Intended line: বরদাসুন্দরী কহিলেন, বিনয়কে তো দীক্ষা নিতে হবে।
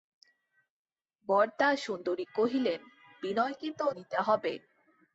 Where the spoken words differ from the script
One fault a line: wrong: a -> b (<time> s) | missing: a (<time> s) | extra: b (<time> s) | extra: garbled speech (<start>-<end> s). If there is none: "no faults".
missing: দীক্ষা (3.9 s)